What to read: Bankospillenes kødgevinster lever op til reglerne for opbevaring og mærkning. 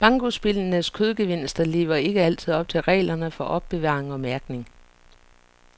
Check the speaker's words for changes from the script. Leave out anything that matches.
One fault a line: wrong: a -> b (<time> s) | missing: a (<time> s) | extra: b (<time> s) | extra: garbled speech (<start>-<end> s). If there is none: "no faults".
extra: ikke altid (1.9 s)